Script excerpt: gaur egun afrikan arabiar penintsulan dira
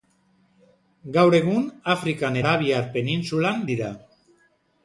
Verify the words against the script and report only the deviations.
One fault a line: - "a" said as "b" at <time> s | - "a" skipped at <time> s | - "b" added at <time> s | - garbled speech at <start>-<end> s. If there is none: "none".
none